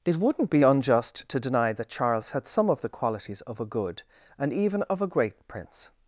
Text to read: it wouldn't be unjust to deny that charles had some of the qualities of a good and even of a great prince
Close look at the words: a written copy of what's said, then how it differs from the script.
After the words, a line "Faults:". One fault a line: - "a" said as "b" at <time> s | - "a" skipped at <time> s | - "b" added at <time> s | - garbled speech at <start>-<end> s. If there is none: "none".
it wouldn't be unjust to deny that charles had some of the qualities of a good and even of a great prince
Faults:
none